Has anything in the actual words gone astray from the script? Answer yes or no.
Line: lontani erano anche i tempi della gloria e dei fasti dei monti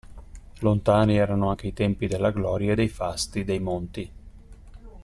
no